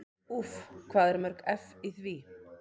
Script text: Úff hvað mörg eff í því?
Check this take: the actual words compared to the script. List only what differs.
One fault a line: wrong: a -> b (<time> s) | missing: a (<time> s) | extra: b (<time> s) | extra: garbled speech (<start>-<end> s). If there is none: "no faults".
extra: eru (1.1 s)